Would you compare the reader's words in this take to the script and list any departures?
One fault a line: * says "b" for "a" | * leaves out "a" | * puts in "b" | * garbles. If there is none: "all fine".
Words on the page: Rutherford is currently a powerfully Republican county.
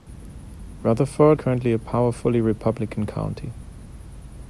* leaves out "is"